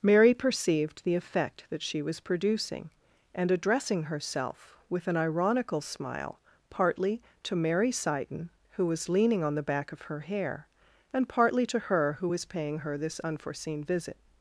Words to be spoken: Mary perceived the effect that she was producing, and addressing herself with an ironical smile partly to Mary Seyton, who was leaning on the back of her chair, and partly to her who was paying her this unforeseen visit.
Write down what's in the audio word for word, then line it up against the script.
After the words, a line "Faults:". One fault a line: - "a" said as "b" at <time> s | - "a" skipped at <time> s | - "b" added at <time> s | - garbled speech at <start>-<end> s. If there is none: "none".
Mary perceived the effect that she was producing, and addressing herself with an ironical smile partly to Mary Seyton, who was leaning on the back of her hair, and partly to her who was paying her this unforeseen visit.
Faults:
- "chair" said as "hair" at 10.2 s